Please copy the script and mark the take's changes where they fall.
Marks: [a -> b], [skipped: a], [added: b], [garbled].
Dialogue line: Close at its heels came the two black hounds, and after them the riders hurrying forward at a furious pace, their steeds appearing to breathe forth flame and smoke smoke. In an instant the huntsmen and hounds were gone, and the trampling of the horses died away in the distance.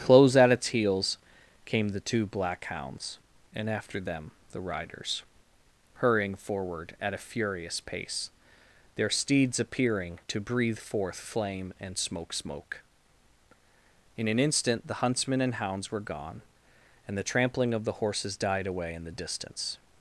Close at its heels came the two black hounds, and after them the riders hurrying forward at a furious pace, their steeds appearing to breathe forth flame and smoke smoke. In an instant the huntsmen and hounds were gone, and the trampling of the horses died away in the distance.